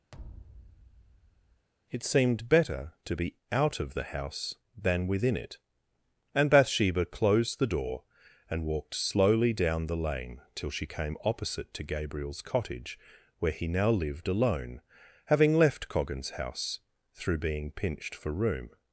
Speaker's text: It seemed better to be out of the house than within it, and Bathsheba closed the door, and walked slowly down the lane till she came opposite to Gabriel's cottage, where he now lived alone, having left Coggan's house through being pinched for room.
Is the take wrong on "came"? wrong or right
right